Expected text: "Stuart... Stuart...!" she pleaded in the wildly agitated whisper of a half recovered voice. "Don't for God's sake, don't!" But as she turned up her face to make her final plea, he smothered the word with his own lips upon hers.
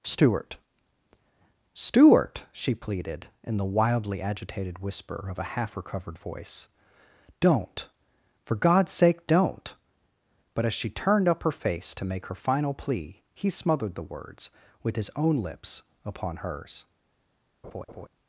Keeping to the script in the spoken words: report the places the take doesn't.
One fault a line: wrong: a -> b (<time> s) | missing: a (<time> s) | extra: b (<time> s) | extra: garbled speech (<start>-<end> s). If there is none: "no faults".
wrong: word -> words (14.0 s)